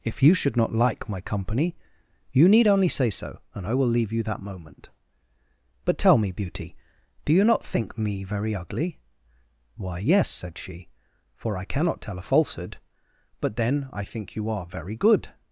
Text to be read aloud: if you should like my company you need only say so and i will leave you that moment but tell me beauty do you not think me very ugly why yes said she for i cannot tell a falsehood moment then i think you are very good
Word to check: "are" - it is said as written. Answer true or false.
true